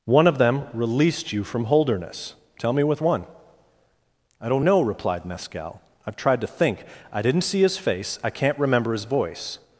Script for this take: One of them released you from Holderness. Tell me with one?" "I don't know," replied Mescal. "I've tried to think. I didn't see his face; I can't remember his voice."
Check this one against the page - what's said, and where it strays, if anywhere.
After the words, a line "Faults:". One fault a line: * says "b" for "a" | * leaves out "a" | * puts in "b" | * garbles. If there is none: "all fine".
One of them released you from Holderness. Tell me with one?" "I don't know," replied Mescal. "I've tried to think. I didn't see his face; I can't remember his voice."
Faults:
all fine